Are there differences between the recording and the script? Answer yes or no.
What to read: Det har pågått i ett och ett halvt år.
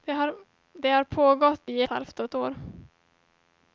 yes